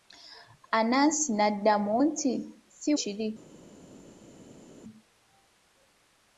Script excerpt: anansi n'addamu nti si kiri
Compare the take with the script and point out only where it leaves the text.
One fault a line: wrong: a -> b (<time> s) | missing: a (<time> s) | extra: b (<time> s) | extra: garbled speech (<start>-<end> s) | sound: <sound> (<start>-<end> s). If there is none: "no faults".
no faults